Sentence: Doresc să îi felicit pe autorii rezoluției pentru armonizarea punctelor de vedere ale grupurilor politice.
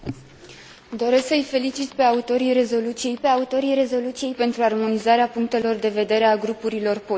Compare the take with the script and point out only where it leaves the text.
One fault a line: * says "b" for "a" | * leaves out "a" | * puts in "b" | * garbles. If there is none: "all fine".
* puts in "pe autorii rezoluției"